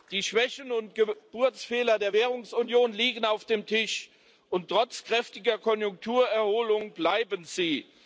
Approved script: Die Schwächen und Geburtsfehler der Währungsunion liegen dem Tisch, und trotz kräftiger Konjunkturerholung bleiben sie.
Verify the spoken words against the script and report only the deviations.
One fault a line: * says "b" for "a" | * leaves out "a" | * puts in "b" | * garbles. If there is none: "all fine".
* puts in "auf"